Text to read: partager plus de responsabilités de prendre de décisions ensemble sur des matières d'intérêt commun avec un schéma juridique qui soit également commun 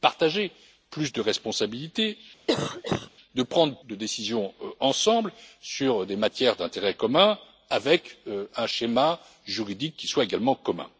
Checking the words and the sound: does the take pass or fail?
fail